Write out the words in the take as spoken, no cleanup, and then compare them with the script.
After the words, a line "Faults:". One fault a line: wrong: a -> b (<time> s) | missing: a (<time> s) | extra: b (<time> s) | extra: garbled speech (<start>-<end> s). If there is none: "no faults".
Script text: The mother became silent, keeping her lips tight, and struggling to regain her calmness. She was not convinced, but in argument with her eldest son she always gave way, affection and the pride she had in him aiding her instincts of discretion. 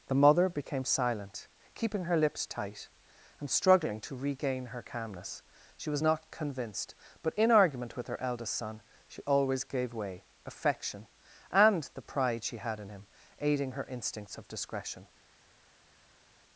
The mother became silent, keeping her lips tight, and struggling to regain her calmness. She was not convinced, but in argument with her eldest son she always gave way, affection and the pride she had in him aiding her instincts of discretion.
Faults:
no faults